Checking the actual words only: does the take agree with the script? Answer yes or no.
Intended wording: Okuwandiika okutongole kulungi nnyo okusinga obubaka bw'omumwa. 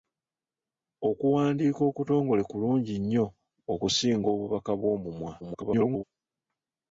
no